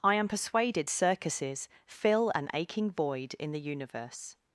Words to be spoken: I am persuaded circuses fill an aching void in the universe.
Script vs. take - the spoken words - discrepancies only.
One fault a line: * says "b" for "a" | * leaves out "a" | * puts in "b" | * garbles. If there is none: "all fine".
all fine